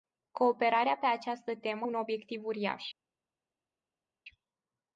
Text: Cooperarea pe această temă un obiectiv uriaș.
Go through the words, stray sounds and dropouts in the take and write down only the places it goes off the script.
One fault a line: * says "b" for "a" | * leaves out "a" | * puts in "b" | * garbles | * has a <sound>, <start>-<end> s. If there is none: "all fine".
all fine